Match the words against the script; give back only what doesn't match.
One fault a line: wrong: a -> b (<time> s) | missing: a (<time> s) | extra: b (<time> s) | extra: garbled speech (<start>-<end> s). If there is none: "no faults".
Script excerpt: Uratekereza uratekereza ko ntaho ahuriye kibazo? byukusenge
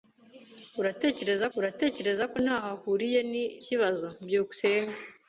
no faults